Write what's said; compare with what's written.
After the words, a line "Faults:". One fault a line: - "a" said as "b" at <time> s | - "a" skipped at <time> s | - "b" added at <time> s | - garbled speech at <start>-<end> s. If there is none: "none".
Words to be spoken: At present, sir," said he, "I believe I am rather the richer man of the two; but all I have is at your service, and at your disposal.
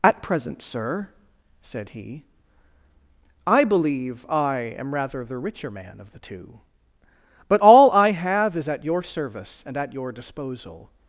At present, sir," said he, "I believe I am rather the richer man of the two; but all I have is at your service, and at your disposal.
Faults:
none